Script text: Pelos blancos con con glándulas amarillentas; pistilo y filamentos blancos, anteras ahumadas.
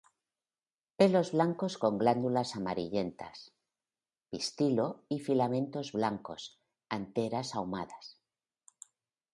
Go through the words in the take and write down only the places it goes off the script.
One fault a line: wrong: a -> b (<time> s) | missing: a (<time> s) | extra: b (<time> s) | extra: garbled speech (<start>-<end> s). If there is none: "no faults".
missing: con (2.0 s)